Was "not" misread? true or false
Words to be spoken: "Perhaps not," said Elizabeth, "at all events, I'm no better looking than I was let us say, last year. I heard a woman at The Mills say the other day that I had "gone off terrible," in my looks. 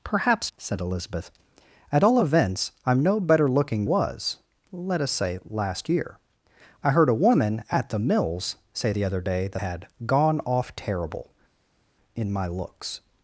true